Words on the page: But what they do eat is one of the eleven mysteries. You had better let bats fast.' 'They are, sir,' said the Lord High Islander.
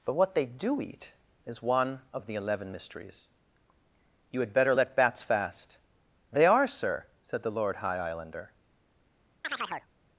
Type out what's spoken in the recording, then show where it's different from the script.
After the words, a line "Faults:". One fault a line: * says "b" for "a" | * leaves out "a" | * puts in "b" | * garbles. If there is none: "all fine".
But what they do eat is one of the eleven mysteries. You had better let bats fast.' 'They are, sir,' said the Lord High Islander.
Faults:
all fine